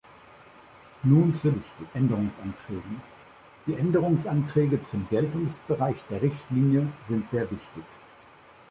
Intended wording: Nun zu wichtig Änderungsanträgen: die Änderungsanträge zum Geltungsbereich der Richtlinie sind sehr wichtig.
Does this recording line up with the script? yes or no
yes